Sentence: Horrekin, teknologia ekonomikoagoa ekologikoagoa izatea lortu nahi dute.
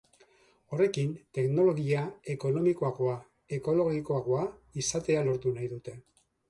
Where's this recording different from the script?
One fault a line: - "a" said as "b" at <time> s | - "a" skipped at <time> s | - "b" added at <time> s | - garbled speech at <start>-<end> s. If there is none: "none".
none